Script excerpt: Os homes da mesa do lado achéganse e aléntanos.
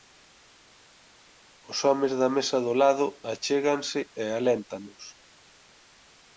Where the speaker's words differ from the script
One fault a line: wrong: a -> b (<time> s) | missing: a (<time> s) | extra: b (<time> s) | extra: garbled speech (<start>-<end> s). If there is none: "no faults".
no faults